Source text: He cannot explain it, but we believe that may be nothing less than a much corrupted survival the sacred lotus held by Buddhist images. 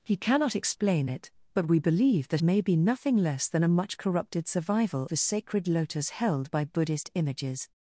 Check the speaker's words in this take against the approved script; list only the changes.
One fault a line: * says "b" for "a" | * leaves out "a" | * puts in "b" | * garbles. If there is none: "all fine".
all fine